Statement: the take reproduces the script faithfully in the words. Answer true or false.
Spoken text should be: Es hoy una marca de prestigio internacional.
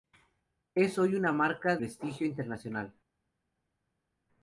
false